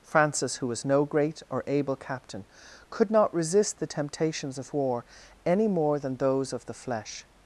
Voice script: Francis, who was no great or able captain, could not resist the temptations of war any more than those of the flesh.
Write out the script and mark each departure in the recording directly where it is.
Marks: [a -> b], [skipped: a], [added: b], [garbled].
Francis, who was no great or able captain, could not resist the temptations of war any more than those of the flesh.